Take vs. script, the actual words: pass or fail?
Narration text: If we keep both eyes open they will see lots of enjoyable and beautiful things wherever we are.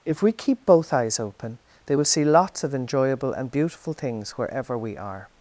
pass